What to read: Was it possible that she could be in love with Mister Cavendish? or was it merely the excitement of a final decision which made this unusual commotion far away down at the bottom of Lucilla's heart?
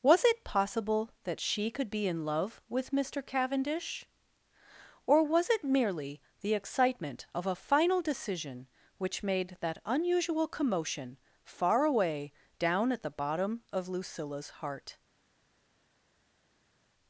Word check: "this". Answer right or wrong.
wrong